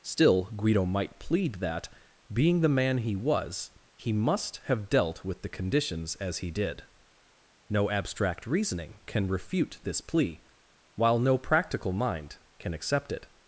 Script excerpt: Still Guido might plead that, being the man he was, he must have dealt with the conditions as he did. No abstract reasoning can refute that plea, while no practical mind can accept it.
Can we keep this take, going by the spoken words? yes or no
no